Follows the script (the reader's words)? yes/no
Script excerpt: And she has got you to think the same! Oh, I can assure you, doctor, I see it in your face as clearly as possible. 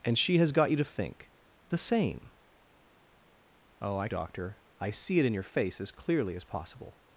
no